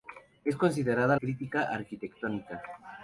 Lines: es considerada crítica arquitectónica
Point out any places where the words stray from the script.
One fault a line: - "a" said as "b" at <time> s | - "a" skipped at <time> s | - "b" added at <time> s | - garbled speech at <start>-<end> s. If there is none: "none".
none